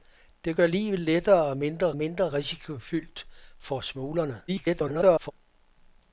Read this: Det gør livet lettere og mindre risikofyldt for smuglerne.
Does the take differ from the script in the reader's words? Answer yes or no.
yes